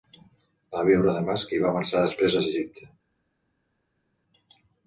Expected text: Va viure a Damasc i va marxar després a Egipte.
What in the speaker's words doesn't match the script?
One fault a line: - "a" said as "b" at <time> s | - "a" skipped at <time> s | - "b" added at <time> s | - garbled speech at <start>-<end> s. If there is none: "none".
none